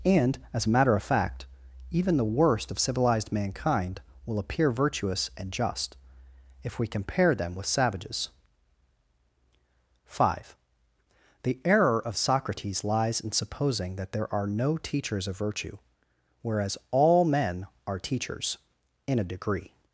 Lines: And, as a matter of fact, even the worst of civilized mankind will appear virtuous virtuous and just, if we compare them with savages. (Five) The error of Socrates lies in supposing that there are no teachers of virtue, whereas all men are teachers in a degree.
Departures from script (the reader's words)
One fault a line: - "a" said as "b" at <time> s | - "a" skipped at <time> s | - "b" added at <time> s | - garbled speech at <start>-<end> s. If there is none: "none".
- "virtuous" skipped at 5.3 s